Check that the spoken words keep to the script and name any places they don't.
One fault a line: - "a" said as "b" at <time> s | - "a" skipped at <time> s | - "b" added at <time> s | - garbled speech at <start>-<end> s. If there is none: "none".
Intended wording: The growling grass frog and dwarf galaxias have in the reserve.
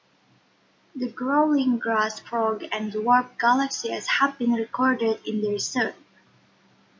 - "been recorded" added at 4.4 s